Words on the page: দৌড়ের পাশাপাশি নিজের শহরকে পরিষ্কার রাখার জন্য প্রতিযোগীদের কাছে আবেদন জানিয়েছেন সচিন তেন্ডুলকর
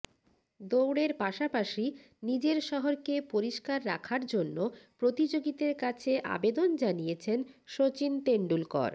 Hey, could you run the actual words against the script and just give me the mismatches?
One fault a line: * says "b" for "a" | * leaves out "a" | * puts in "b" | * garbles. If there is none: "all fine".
all fine